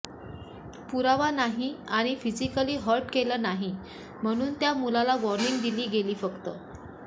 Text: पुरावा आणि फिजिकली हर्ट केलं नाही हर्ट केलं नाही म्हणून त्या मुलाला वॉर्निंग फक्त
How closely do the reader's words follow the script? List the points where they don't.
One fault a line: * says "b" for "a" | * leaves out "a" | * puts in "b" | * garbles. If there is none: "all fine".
* puts in "नाही"
* leaves out "हर्ट केलं नाही"
* puts in "दिली गेली"